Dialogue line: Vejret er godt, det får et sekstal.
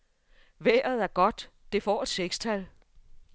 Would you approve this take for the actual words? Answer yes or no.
yes